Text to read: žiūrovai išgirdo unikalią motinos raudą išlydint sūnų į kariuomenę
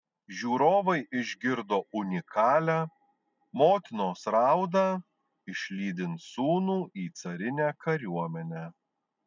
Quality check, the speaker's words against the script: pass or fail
fail